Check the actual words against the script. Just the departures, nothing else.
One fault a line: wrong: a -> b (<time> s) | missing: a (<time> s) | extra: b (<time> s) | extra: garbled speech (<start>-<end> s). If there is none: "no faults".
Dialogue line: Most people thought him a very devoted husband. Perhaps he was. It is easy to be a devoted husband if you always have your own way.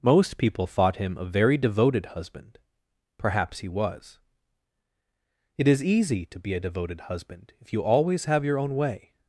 no faults